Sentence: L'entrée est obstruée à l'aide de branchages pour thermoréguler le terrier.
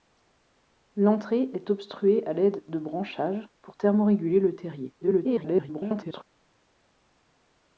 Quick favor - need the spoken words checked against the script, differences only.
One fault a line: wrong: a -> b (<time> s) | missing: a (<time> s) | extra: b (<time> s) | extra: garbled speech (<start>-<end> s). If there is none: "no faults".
extra: garbled speech (5.0-6.2 s)